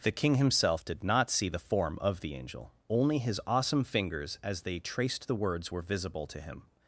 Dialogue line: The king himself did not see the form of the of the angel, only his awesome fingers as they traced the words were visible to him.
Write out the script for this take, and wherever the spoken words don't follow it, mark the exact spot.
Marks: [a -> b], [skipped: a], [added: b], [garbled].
The king himself did not see the form of the [skipped: of the] angel, only his awesome fingers as they traced the words were visible to him.